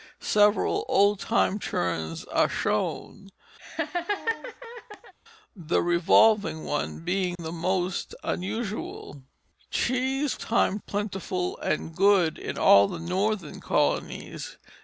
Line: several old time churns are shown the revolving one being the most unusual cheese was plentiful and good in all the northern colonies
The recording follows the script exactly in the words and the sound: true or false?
false